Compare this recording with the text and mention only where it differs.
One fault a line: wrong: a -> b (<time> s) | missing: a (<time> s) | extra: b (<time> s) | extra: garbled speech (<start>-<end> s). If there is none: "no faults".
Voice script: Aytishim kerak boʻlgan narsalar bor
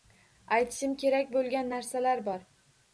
no faults